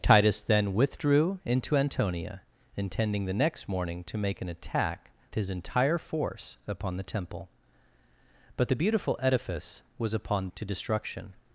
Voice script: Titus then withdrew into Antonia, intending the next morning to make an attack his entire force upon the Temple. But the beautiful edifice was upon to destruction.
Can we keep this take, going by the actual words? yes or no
yes